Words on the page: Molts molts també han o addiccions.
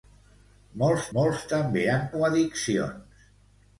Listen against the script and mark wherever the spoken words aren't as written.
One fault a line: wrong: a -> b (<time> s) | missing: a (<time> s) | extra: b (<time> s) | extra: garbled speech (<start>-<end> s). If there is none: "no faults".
no faults